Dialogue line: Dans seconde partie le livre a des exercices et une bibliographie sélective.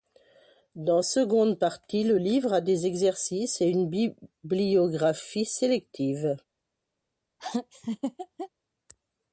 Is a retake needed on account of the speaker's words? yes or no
no